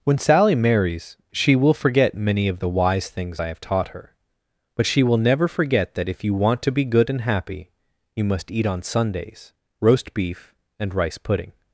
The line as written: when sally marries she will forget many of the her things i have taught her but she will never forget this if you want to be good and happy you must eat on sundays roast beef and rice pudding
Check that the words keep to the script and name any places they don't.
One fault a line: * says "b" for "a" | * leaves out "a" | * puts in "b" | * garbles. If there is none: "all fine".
* says "wise" for "her"
* says "that" for "this"